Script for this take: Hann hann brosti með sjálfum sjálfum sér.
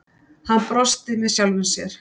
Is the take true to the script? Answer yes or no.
no